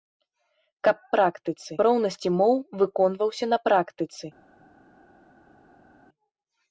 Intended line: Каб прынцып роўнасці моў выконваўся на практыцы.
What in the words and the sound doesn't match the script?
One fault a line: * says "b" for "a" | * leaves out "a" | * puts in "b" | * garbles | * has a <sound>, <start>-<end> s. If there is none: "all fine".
* says "практыцы" for "прынцып"